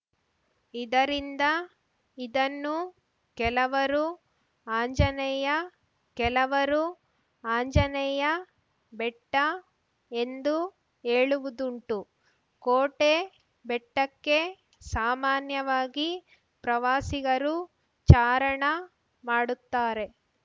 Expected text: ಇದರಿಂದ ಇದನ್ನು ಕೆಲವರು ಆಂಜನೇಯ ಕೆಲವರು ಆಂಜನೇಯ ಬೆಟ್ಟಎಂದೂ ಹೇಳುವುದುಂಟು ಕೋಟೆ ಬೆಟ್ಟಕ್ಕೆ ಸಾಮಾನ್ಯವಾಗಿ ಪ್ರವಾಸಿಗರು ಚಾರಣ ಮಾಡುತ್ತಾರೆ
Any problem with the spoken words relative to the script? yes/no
no